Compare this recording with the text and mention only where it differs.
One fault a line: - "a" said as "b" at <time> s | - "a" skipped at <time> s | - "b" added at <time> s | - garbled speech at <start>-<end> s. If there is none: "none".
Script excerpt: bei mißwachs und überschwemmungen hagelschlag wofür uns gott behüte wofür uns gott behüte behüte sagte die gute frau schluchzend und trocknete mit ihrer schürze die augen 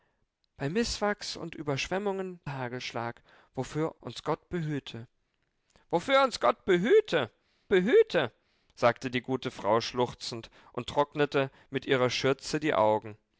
none